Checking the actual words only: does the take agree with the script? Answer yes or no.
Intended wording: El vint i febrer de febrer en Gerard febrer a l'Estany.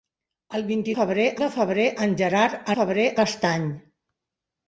yes